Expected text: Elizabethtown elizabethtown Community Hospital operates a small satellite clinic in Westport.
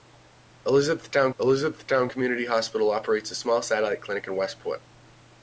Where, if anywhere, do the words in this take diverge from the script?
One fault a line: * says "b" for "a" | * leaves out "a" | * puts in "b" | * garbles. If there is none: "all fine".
all fine